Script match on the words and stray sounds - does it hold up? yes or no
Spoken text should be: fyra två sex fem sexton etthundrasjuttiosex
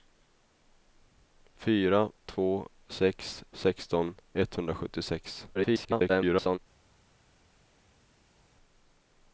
no